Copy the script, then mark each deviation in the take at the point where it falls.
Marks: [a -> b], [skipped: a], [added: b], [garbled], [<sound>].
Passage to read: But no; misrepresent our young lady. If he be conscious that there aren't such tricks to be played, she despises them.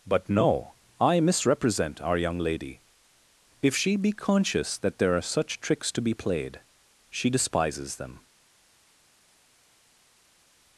But no; [added: I] misrepresent our young lady. If [he -> she] be conscious that there [aren't -> are] such tricks to be played, she despises them.